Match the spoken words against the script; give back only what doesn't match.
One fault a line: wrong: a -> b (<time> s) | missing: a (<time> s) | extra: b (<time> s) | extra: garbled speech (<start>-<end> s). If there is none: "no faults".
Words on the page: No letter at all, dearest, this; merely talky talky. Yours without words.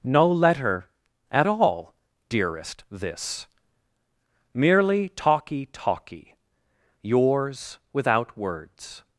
no faults